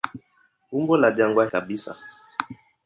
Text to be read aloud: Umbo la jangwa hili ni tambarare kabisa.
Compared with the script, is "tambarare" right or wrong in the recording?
wrong